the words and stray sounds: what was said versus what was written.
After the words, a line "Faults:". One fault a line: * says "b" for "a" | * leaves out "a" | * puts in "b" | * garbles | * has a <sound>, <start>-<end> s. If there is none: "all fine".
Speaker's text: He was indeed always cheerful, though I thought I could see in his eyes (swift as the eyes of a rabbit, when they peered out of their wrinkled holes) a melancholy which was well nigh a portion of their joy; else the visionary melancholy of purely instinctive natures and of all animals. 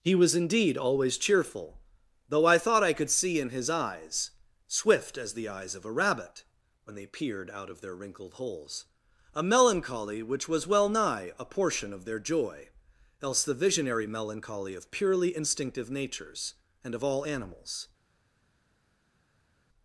He was indeed always cheerful, though I thought I could see in his eyes (swift as the eyes of a rabbit, when they peered out of their wrinkled holes) a melancholy which was well nigh a portion of their joy; else the visionary melancholy of purely instinctive natures and of all animals.
Faults:
all fine